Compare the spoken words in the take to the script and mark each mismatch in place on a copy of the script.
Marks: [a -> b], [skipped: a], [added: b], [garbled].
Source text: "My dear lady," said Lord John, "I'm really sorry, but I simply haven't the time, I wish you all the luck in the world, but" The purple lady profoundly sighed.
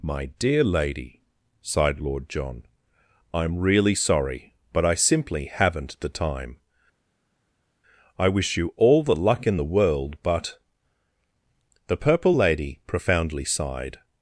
"My dear lady," [said -> sighed] Lord John, "I'm really sorry, but I simply haven't the time, I wish you all the luck in the world, but" The purple lady profoundly sighed.